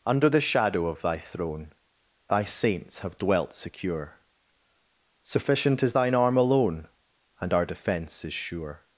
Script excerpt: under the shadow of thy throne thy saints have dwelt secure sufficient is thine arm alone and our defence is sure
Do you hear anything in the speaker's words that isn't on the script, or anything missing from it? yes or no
no